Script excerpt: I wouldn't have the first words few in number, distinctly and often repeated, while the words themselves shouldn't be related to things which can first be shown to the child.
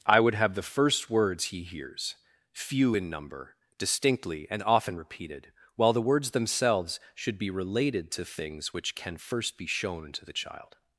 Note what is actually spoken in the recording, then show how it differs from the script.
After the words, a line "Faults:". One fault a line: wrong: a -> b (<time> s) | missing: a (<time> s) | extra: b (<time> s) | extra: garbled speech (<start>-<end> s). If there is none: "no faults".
I would have the first words he hears few in number, distinctly and often repeated, while the words themselves should be related to things which can first be shown to the child.
Faults:
wrong: wouldn't -> would (0.2 s)
extra: he hears (1.4 s)
wrong: shouldn't -> should (7.1 s)